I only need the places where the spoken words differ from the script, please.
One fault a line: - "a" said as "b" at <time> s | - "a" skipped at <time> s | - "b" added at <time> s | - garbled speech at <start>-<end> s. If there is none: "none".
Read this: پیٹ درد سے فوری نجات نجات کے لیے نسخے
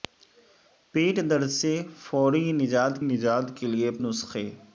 none